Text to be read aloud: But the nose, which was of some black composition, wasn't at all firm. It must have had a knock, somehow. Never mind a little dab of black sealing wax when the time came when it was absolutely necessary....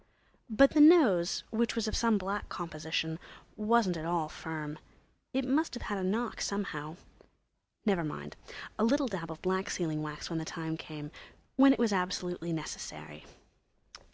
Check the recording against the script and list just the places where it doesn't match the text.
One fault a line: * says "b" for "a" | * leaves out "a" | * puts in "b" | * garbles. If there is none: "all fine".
all fine